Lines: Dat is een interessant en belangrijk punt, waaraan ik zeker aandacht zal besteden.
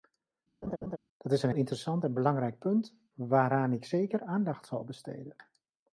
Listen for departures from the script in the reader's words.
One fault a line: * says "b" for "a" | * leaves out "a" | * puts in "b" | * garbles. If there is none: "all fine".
all fine